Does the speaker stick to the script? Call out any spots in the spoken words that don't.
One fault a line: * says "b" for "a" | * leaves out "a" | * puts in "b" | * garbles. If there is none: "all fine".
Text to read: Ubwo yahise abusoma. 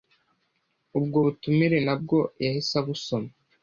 * puts in "butumire nabwo"